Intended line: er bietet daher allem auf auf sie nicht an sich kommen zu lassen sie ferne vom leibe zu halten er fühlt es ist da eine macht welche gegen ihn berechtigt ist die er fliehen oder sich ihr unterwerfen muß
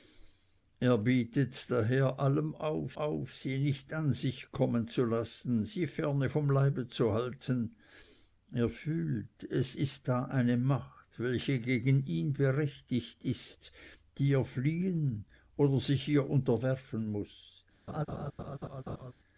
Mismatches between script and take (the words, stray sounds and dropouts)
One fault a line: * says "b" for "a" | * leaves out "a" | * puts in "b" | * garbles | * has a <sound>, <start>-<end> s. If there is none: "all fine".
* has a laugh, 17.9-19.1 s